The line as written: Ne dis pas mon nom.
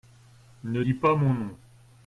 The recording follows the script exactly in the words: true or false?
true